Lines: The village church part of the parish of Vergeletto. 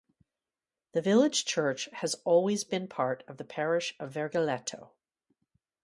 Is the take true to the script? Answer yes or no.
no